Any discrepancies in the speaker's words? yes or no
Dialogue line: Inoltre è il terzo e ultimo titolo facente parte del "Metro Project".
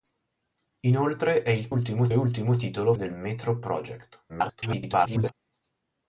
yes